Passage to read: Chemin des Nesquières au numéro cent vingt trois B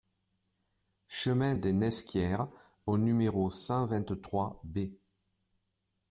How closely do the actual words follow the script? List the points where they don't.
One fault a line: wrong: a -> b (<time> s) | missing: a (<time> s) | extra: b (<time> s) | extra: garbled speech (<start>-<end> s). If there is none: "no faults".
no faults